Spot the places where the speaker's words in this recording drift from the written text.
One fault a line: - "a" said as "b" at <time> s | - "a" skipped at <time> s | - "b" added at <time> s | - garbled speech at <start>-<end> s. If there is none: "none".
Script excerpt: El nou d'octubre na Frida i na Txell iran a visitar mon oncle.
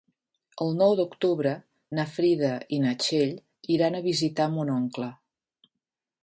none